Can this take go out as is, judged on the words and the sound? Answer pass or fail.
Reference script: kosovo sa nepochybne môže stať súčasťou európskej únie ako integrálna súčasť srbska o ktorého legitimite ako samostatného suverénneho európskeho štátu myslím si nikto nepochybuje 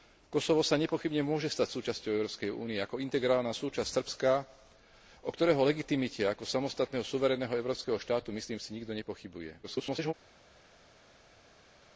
fail